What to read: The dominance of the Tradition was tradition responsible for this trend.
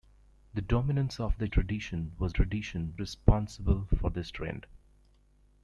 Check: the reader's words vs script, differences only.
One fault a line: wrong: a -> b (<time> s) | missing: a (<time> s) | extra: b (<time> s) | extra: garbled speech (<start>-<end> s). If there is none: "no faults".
no faults